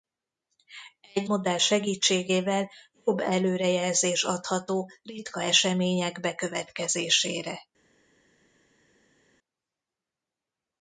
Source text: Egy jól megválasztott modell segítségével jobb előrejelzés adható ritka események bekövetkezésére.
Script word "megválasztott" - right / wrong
wrong